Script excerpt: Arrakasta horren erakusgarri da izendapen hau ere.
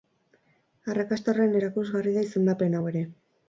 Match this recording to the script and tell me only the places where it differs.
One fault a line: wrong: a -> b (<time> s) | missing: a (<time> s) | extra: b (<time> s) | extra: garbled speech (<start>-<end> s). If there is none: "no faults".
no faults